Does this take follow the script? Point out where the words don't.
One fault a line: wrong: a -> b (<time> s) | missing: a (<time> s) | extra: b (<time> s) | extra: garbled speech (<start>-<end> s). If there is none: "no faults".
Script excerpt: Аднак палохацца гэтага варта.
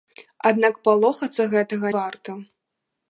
no faults